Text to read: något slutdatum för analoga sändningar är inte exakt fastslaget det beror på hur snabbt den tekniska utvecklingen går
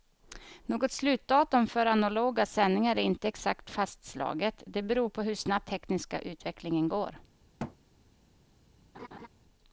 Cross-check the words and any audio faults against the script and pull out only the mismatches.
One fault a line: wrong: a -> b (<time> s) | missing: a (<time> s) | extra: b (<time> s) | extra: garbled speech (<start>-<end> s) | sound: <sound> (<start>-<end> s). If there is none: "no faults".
missing: den (5.7 s)
sound: thud (7.6-7.8 s)
sound: laugh (8.9-9.3 s)